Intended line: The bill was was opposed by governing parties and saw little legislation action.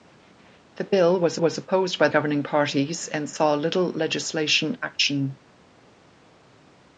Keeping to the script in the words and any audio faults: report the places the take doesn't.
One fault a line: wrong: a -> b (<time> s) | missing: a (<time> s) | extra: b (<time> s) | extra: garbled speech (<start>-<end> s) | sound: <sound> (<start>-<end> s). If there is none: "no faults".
no faults